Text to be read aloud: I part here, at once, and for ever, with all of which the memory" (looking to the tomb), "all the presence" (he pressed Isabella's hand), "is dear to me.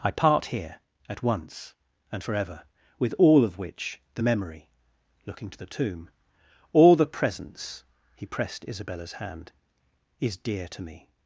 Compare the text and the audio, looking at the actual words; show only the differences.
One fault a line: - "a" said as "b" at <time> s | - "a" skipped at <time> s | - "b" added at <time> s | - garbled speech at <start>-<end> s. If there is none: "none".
none